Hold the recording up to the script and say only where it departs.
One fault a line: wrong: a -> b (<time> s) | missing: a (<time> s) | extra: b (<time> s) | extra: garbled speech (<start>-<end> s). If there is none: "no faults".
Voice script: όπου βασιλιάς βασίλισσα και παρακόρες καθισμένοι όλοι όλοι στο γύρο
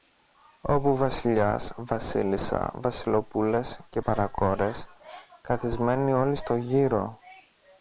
extra: βασιλοπούλες (2.8 s)
missing: όλοι (6.3 s)